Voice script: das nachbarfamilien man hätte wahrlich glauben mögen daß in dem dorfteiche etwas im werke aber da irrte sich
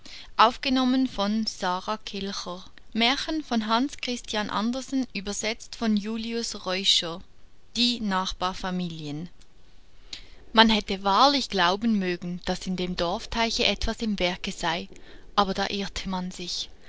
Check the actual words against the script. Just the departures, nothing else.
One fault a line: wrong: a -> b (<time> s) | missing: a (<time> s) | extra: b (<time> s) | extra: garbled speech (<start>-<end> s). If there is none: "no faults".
wrong: das -> die (7.8 s)
extra: sei (14.5 s)
extra: man (16.1 s)